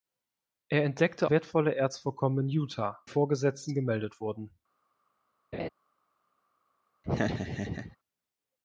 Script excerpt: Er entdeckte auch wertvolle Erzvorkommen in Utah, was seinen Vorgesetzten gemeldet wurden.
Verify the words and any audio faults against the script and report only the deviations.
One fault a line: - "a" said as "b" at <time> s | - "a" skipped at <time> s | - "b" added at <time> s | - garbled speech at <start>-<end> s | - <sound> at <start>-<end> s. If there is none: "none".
- "auch" skipped at 1.3 s
- "was seinen" skipped at 3.0 s
- laugh at 5.5-5.7 s
- laugh at 7.0-8.0 s